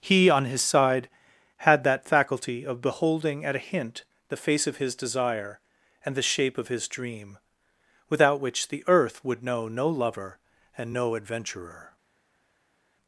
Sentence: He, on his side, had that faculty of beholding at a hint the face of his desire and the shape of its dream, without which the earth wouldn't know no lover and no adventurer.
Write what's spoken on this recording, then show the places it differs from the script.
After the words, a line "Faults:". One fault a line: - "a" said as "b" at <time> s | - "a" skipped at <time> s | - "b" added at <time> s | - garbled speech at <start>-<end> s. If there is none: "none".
He, on his side, had that faculty of beholding at a hint the face of his desire and the shape of his dream, without which the earth would know no lover and no adventurer.
Faults:
- "its" said as "his" at 6.7 s
- "wouldn't" said as "would" at 9.2 s